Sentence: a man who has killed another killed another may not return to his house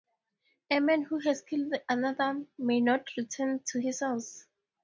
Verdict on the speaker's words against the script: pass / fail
fail